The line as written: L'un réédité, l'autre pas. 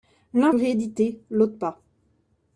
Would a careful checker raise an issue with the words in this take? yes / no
no